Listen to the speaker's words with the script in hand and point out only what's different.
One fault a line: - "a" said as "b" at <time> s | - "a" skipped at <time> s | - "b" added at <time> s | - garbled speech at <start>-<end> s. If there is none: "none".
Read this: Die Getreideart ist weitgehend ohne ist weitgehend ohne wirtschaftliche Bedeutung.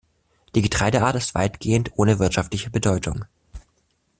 - "ist weitgehend ohne" skipped at 2.2 s